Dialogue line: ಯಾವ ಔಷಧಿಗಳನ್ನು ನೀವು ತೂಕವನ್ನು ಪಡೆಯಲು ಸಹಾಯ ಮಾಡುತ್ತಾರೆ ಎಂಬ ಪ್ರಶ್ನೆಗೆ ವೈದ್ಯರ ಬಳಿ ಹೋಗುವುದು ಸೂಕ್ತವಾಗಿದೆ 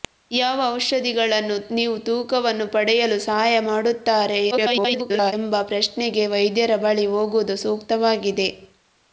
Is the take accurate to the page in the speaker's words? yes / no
no